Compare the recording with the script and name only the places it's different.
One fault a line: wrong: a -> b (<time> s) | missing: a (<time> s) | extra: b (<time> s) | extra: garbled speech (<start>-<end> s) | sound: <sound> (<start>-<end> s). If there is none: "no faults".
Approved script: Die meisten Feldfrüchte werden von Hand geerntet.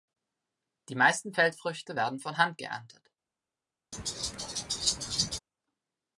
sound: laugh (3.9-5.4 s)